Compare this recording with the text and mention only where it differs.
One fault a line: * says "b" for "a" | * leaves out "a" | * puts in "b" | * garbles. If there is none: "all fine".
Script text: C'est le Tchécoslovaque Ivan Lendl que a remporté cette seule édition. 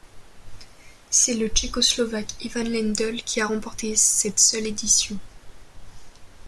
* says "qui" for "que"